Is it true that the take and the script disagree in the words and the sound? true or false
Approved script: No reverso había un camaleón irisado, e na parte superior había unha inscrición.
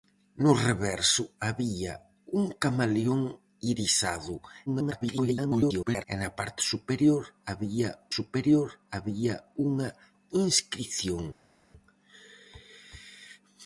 true